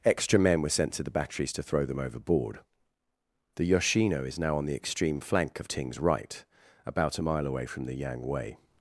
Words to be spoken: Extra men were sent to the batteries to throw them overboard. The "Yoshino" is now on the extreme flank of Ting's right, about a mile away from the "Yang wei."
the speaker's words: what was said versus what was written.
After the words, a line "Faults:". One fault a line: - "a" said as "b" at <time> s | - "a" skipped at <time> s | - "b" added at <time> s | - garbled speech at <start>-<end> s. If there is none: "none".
Extra men were sent to the batteries to throw them overboard. The "Yoshino" is now on the extreme flank of Ting's right, about a mile away from the "Yang wei."
Faults:
none